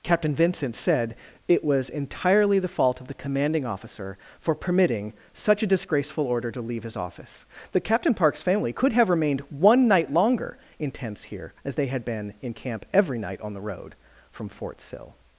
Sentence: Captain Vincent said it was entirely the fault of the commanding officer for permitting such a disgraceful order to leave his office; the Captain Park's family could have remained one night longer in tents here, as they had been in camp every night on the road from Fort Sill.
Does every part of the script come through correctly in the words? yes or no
yes